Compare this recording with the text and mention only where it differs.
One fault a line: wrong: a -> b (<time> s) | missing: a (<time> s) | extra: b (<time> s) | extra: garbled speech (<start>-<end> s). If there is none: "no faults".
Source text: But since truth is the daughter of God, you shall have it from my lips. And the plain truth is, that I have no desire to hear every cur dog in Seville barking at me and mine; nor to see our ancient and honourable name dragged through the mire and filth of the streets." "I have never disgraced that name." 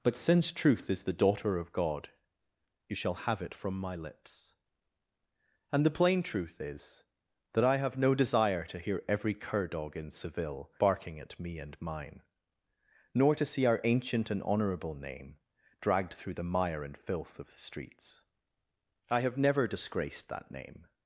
no faults